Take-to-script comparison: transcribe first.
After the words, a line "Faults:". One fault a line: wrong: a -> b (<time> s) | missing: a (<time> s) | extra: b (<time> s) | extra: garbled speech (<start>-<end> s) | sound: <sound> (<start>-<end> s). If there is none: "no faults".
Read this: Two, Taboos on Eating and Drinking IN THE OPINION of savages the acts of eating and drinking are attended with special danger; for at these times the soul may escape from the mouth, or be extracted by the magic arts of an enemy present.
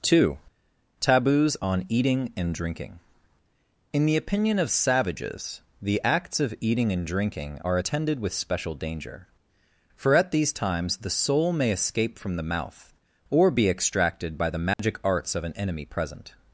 Two, Taboos on Eating and Drinking IN THE OPINION of savages the acts of eating and drinking are attended with special danger; for at these times the soul may escape from the mouth, or be extracted by the magic arts of an enemy present.
Faults:
sound: dropout (14.7-14.8 s)